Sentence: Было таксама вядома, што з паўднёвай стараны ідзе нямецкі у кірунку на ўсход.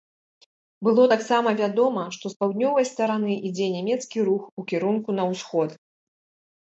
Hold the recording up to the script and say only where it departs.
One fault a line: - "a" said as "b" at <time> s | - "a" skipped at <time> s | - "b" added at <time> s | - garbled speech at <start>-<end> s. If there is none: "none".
- "рух" added at 4.3 s